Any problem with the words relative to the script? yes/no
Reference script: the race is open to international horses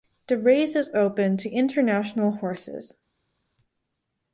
no